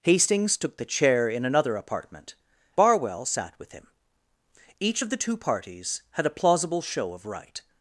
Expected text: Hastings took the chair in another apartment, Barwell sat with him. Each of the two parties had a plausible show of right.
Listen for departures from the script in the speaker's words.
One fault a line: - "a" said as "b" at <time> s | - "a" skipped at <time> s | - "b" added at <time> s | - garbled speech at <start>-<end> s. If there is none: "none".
none